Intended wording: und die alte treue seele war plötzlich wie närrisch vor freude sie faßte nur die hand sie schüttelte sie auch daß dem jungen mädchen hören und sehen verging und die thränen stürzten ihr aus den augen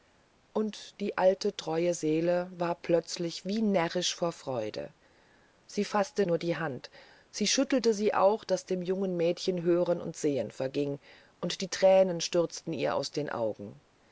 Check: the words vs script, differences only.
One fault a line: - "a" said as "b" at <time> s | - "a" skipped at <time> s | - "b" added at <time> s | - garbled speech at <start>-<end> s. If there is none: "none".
none